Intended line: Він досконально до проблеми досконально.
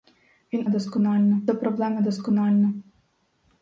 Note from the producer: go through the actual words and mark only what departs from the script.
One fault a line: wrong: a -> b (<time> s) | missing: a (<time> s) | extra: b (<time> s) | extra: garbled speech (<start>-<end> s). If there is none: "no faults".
no faults